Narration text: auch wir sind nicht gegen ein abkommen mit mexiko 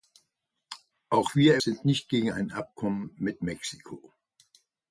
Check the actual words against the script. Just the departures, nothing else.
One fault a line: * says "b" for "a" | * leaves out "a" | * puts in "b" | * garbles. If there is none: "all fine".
all fine